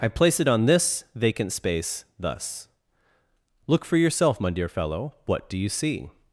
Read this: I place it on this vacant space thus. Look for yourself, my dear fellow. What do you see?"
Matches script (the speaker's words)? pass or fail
pass